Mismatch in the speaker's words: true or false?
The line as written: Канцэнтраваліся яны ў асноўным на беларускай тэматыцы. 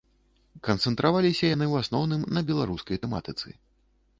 false